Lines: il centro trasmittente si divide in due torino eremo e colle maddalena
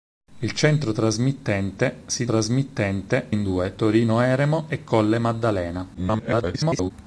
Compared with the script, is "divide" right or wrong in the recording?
wrong